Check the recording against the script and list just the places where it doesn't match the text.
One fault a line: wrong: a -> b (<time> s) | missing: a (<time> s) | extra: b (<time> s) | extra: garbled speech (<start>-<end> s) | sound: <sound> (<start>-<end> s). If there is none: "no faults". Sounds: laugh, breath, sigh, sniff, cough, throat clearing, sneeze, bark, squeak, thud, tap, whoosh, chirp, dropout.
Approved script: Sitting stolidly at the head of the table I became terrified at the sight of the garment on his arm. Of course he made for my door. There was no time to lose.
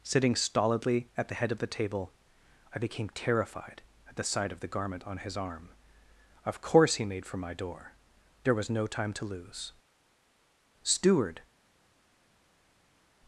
extra: Steward (10.8 s)